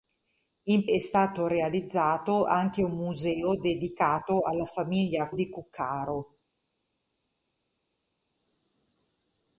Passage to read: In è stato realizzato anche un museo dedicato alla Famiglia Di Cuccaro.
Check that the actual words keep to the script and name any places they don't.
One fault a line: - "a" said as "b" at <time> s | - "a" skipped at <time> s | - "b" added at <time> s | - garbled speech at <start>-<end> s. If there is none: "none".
none